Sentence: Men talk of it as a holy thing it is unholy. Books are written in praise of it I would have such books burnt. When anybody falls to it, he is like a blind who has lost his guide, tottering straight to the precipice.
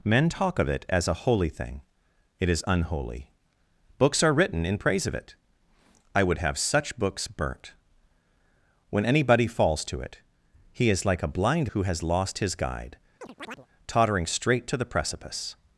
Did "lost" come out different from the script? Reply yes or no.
no